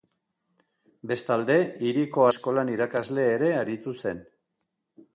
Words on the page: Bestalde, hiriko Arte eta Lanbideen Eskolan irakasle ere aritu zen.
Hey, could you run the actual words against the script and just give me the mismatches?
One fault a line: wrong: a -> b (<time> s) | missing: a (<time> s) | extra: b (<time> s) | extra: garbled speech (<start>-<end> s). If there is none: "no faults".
missing: Arte eta Lanbideen (2.2 s)